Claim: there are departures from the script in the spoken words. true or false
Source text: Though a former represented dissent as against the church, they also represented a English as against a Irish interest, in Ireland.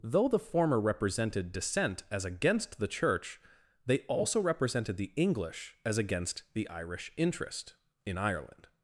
true